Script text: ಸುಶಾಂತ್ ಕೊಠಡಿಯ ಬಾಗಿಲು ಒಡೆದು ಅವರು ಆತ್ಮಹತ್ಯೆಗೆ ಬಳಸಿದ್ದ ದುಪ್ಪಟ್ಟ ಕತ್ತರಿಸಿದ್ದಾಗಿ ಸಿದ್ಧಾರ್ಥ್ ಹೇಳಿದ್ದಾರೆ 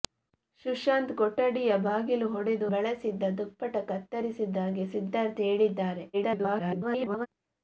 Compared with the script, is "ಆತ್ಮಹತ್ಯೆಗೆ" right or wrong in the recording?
wrong